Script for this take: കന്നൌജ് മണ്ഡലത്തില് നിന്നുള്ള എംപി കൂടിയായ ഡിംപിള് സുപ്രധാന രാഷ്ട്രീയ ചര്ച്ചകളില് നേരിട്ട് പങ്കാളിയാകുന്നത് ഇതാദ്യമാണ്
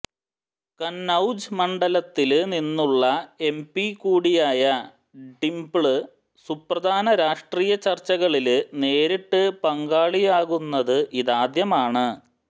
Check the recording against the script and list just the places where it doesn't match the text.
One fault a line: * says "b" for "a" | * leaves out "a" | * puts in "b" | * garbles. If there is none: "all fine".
all fine